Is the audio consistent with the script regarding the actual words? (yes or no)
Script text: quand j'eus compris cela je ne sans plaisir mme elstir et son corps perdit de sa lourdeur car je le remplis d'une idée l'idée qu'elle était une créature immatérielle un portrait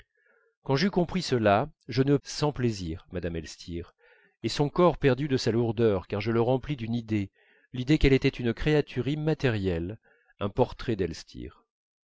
yes